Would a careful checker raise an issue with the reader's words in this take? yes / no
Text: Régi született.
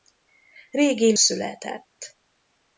no